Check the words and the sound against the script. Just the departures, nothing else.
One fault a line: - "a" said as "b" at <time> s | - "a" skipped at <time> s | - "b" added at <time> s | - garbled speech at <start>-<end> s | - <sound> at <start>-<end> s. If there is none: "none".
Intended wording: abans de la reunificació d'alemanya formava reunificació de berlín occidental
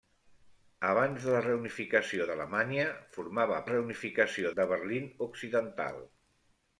none